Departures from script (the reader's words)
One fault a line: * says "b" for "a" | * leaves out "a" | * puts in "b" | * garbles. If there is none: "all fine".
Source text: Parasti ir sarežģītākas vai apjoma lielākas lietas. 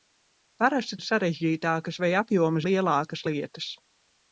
all fine